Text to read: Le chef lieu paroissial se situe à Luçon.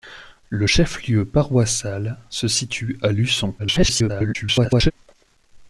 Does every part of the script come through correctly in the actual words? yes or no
no